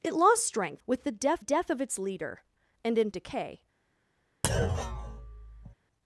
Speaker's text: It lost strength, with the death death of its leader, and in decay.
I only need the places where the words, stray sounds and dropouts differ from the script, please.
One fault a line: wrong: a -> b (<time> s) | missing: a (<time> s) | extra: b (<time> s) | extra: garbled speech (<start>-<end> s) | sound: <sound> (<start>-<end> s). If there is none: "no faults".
sound: thud (4.4-5.7 s)